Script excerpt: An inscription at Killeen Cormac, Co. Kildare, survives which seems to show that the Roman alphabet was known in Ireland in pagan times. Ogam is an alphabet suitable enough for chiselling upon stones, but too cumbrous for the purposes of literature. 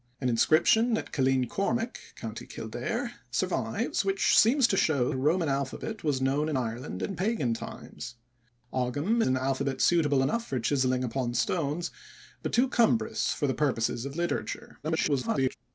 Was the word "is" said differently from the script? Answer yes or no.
yes